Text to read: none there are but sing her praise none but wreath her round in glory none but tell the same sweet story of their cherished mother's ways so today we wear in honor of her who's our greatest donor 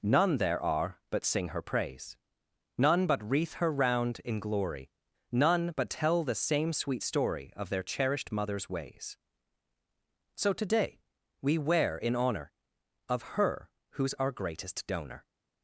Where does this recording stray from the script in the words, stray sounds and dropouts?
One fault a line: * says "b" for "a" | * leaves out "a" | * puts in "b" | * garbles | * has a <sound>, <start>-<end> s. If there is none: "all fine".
all fine